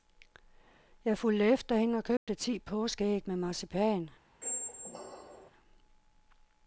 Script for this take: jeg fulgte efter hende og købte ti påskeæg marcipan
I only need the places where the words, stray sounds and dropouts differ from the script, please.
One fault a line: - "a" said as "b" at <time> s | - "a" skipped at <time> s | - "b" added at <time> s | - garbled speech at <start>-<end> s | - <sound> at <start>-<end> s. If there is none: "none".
- dropout at 2.2-2.3 s
- "med" added at 3.3 s
- squeak at 4.4-5.5 s